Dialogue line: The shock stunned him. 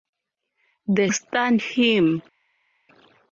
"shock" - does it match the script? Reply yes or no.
no